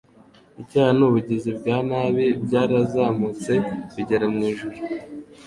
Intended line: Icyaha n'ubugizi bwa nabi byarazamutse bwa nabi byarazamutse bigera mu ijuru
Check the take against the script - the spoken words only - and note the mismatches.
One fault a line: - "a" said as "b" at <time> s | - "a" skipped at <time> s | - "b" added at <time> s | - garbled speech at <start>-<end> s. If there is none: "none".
- "bwa nabi byarazamutse" skipped at 3.5 s